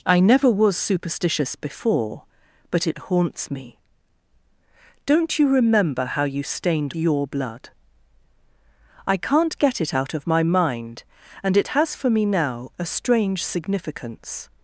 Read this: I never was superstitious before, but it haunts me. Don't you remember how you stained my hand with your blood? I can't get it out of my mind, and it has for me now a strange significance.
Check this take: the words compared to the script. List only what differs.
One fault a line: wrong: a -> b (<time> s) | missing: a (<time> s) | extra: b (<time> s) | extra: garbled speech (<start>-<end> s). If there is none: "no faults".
missing: my hand with (7.0 s)